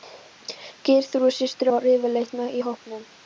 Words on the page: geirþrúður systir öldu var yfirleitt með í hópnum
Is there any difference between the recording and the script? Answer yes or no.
yes